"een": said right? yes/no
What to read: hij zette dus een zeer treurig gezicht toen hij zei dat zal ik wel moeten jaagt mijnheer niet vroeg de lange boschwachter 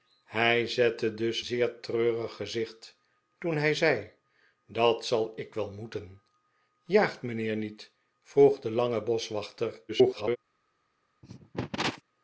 no